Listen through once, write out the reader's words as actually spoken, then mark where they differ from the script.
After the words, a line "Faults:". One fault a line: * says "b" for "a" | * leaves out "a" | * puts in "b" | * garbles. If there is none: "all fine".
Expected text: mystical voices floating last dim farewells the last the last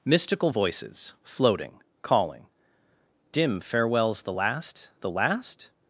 mystical voices floating calling dim farewells the last the last
Faults:
* says "calling" for "last"